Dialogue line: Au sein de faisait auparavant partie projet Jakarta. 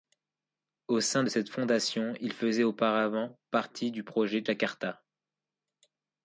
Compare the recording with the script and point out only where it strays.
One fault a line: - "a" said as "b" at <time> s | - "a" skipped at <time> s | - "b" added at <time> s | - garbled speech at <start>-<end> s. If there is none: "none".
- "cette fondation il" added at 1.3 s
- "du" added at 3.9 s